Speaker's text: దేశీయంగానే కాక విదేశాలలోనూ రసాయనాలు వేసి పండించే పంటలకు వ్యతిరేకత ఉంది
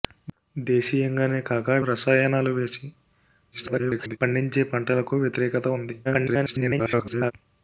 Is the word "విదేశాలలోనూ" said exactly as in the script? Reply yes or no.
no